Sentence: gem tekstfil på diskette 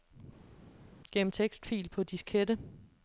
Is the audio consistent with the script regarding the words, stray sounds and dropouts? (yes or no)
yes